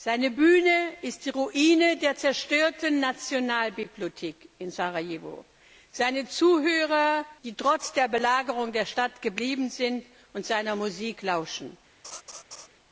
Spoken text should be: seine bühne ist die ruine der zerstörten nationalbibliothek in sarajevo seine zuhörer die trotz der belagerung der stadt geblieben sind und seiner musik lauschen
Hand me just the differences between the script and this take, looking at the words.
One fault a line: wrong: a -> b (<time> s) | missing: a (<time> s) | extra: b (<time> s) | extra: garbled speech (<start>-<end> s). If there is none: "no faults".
no faults